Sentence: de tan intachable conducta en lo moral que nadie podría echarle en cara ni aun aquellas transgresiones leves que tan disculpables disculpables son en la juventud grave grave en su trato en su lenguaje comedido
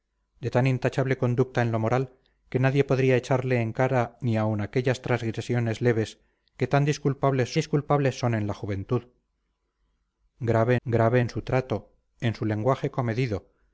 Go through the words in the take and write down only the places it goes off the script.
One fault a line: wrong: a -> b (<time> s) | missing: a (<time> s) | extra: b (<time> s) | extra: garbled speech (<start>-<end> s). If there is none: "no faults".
no faults